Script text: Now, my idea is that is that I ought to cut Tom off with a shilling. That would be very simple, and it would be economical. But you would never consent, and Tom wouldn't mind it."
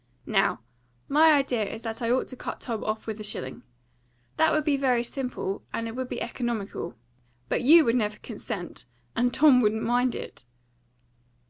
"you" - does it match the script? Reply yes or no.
yes